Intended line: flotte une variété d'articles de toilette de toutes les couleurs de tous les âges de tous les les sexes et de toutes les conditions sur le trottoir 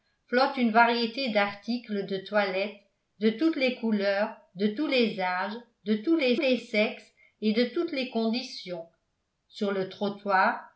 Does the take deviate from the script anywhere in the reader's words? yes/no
no